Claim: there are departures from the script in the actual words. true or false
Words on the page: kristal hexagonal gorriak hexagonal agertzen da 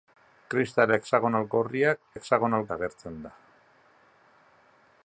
false